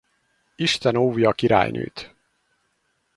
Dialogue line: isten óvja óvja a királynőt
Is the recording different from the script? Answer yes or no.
yes